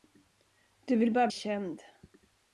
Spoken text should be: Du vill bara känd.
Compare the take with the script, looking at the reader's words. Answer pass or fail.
pass